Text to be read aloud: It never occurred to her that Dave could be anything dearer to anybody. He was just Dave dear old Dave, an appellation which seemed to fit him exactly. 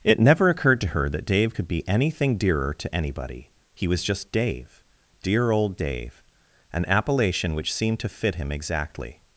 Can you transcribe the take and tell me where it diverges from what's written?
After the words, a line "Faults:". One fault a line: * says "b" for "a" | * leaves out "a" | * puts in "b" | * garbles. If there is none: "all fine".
It never occurred to her that Dave could be anything dearer to anybody. He was just Dave dear old Dave, an appellation which seemed to fit him exactly.
Faults:
all fine